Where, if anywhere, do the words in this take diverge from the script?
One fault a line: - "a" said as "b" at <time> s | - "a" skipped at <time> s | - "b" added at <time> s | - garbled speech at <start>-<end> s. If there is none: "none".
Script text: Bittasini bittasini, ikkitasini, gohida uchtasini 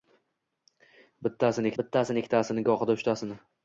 none